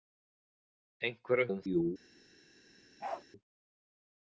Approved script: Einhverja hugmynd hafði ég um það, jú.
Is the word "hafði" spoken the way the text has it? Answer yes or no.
no